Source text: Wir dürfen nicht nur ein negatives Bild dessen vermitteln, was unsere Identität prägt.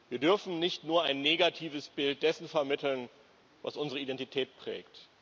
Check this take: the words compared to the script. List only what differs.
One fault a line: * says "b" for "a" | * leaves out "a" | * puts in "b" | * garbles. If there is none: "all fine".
all fine